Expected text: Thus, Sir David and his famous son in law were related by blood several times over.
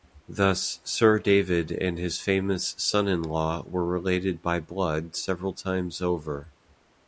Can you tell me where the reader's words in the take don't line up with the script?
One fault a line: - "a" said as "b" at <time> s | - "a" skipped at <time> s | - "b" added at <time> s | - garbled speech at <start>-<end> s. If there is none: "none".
none